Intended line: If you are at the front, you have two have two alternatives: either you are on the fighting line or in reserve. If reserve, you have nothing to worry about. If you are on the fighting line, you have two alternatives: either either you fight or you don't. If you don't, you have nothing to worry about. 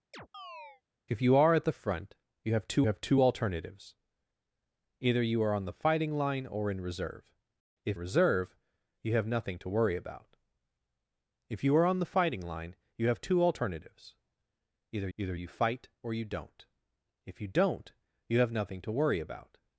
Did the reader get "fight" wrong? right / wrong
right